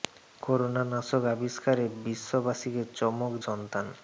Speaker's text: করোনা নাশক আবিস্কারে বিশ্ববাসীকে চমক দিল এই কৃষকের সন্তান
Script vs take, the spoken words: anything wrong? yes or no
yes